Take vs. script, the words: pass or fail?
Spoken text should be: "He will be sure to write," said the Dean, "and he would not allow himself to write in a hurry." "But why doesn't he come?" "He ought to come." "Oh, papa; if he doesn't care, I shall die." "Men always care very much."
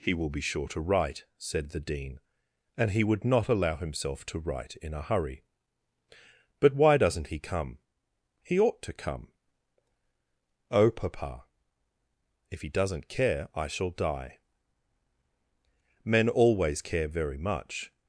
pass